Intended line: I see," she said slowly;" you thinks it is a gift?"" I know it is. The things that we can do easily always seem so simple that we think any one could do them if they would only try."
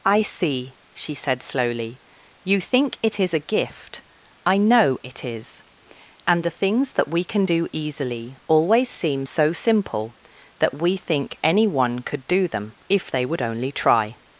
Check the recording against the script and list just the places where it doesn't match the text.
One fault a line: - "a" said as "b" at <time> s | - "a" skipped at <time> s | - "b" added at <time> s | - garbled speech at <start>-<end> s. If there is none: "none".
- "thinks" said as "think" at 2.6 s
- "And" added at 6.2 s